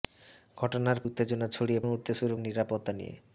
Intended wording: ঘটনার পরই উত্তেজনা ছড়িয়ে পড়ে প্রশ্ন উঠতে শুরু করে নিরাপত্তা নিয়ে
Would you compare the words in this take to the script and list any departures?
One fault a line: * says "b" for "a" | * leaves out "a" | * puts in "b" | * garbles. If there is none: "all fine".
* leaves out "পরই"
* leaves out "পড়ে প্রশ্ন"
* leaves out "করে"